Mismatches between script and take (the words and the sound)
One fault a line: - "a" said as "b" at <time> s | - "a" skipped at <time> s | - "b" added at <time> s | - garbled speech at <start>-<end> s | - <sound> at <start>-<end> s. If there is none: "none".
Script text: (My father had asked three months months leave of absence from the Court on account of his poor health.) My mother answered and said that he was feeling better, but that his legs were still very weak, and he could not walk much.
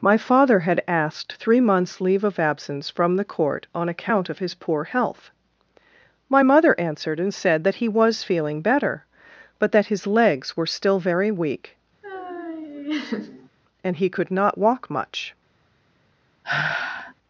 - "months" skipped at 2.0 s
- laugh at 12.0-13.5 s
- sigh at 16.4-17.1 s